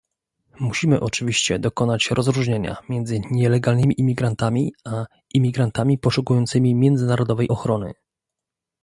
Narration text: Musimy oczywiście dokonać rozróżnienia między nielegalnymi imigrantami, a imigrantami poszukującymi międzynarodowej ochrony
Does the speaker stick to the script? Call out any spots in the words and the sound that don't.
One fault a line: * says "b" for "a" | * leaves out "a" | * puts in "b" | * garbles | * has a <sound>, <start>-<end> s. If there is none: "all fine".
all fine